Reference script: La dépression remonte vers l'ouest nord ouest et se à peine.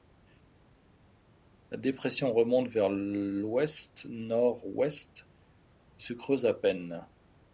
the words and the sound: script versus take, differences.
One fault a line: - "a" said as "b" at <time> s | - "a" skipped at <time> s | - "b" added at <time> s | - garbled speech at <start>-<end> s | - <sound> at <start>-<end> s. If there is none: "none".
- "creuse" added at 6.1 s